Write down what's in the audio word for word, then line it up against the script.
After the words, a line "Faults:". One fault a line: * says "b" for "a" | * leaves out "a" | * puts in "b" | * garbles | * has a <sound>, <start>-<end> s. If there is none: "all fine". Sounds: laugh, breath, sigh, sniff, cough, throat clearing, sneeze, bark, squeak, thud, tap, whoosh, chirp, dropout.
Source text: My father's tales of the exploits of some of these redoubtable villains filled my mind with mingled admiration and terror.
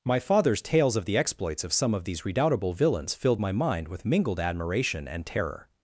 My father's tales of the exploits of some of these redoubtable villains filled my mind with mingled admiration and terror.
Faults:
all fine